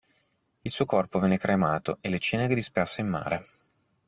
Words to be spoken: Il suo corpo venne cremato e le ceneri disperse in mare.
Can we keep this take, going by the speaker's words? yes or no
yes